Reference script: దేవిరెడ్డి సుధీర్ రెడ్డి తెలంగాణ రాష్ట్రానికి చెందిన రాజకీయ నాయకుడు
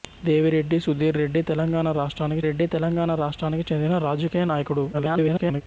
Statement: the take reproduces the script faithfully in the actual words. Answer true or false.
false